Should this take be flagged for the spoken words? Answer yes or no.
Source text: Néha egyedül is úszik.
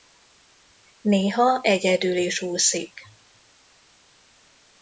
no